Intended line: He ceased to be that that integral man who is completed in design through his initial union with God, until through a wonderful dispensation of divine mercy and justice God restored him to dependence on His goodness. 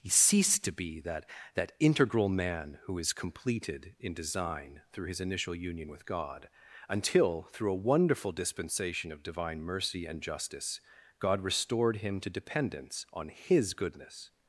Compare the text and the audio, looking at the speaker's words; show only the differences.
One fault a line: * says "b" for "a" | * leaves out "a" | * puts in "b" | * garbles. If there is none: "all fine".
all fine